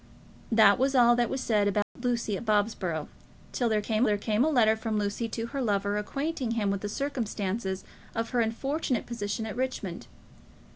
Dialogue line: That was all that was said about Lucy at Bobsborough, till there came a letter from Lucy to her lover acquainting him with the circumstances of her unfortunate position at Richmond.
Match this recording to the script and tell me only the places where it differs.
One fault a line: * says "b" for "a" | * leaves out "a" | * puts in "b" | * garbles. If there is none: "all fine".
* puts in "there came"